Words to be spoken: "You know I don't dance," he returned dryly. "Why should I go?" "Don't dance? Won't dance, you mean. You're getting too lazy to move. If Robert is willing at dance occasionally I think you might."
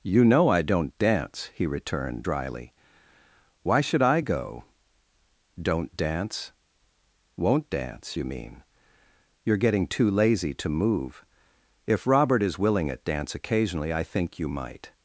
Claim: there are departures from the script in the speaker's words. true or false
false